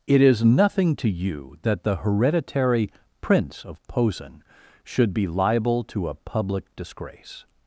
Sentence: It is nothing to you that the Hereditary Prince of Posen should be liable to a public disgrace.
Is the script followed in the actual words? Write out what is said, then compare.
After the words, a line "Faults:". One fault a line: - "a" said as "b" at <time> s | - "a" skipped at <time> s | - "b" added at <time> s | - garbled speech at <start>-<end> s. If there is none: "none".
It is nothing to you that the Hereditary Prince of Posen should be liable to a public disgrace.
Faults:
none